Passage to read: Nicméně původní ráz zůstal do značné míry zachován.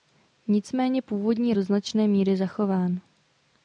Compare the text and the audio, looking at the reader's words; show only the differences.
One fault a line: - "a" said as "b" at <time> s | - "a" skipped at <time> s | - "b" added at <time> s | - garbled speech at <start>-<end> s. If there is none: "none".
- "ráz zůstal" skipped at 1.5 s